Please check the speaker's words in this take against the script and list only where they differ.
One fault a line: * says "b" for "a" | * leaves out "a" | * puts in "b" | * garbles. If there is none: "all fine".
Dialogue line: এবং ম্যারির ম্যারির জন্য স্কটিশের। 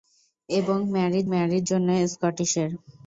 all fine